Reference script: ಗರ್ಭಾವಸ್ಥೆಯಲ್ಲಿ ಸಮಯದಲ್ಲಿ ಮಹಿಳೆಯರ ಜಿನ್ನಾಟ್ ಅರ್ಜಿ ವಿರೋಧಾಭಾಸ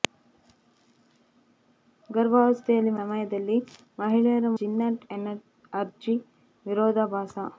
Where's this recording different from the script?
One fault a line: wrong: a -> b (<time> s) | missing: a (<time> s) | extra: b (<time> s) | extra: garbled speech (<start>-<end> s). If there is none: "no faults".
no faults